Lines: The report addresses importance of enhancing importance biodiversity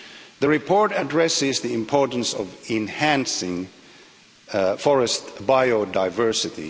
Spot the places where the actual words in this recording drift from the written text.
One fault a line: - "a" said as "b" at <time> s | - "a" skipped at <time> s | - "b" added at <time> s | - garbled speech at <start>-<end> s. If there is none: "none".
- "the" added at 1.6 s
- "importance" said as "forest" at 4.8 s